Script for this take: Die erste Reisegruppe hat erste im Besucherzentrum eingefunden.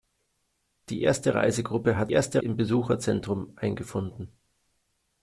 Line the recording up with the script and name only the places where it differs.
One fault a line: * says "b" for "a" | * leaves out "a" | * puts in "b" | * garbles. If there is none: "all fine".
all fine